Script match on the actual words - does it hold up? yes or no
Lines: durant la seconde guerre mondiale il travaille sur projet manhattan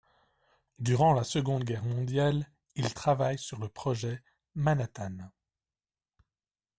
no